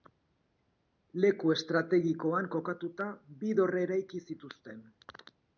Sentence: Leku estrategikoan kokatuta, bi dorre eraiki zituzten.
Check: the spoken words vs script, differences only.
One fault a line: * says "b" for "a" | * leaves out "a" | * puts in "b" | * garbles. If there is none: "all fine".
all fine